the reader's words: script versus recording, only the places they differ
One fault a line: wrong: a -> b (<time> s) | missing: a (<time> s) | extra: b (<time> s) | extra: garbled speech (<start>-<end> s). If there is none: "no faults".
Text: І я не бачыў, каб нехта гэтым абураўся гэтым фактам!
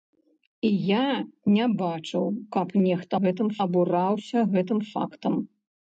no faults